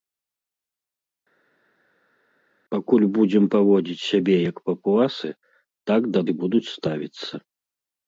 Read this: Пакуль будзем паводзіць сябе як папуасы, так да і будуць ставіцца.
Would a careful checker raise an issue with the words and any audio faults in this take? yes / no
no